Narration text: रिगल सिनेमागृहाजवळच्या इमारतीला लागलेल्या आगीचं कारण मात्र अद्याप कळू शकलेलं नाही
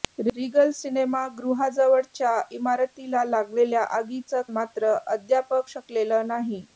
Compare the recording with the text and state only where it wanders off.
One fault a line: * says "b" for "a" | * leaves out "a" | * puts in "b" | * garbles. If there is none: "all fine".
* leaves out "कारण"
* leaves out "कळू"